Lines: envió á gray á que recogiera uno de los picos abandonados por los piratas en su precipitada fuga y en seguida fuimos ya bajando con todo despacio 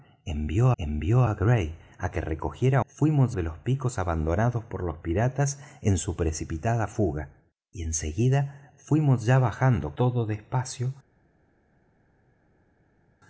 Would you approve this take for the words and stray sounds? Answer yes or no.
no